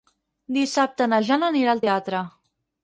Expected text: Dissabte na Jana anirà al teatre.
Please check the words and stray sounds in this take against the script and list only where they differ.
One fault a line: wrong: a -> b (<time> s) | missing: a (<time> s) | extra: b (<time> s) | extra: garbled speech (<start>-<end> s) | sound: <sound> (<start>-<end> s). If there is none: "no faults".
no faults